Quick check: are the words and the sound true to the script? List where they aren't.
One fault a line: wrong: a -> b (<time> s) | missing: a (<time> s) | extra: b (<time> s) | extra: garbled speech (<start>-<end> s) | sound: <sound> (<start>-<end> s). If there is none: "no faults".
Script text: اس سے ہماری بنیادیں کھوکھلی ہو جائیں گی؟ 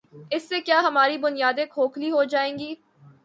extra: کیا (0.6 s)